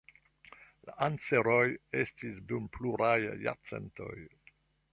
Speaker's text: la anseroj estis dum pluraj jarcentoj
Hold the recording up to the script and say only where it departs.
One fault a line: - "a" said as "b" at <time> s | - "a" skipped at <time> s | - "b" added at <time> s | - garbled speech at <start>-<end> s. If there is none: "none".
none